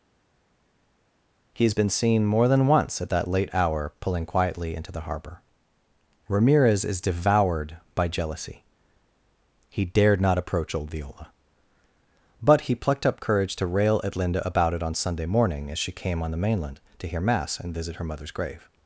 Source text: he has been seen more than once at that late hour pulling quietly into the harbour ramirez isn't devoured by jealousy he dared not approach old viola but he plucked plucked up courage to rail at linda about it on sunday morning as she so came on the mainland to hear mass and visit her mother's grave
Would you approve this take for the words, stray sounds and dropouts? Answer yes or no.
no